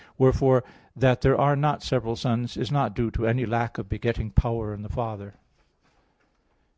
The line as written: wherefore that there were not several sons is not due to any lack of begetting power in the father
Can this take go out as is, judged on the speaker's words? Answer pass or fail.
fail